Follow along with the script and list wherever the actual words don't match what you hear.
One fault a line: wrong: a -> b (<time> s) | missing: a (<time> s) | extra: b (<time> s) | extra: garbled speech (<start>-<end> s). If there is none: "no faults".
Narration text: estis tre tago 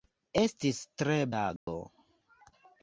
no faults